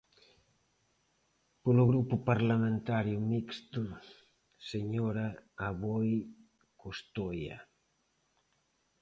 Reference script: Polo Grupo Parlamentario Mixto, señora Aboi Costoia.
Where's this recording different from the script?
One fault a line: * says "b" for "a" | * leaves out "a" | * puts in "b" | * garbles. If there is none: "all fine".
all fine